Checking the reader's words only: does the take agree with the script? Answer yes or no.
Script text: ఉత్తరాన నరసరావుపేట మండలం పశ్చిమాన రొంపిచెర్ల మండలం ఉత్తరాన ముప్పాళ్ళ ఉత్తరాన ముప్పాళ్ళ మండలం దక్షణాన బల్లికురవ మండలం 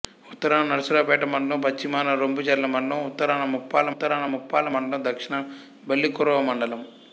yes